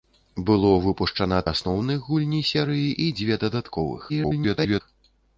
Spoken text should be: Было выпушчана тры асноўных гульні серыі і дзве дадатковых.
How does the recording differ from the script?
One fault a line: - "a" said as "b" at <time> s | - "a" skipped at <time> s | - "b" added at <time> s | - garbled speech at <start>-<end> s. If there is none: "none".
- "тры" skipped at 1.4 s
- garbled speech at 4.1-4.8 s